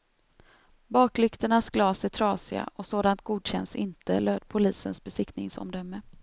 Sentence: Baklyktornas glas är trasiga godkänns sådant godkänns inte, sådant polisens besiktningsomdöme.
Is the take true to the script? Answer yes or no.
no